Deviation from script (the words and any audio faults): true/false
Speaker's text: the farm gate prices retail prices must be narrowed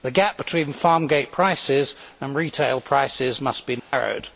true